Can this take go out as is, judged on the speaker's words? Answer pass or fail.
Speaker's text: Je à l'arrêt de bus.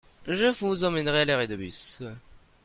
fail